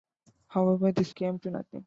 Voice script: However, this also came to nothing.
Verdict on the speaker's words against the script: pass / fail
fail